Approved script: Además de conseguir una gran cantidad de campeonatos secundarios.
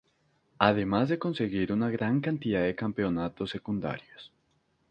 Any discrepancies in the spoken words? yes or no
no